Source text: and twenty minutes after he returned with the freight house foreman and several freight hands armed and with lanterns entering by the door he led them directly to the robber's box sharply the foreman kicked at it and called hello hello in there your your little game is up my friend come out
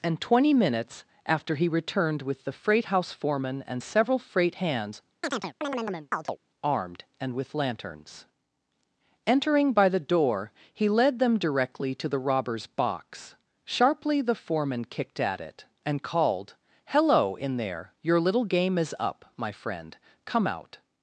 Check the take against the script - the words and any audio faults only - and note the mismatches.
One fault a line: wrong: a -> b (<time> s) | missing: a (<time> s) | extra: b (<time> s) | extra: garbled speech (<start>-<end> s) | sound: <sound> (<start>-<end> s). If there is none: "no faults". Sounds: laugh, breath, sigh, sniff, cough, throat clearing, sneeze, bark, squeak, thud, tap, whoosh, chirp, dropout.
sound: chirp (5.2-6.4 s)
missing: hello (17.4 s)
missing: your (18.2 s)